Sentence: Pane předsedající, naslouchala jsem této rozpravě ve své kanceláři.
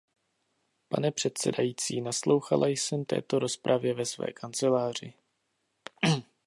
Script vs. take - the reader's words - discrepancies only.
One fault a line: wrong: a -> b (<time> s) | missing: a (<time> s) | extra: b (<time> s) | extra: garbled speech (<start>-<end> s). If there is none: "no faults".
no faults